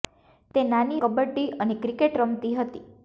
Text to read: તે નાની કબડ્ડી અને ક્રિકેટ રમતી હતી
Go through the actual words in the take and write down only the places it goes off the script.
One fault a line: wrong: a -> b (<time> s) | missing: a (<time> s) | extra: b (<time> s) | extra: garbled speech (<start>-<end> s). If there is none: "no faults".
no faults